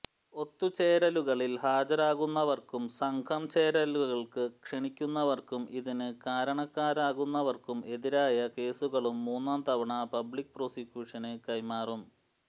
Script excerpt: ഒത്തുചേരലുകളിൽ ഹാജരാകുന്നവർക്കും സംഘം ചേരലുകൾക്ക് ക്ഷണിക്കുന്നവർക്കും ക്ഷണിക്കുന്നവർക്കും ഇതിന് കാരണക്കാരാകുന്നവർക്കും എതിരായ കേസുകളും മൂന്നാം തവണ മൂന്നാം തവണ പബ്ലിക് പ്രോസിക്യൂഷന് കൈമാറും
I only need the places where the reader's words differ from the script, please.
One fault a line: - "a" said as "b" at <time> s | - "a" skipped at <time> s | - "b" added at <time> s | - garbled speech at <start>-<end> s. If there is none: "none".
- "ക്ഷണിക്കുന്നവർക്കും" skipped at 5.6 s
- "മൂന്നാം തവണ" skipped at 9.9 s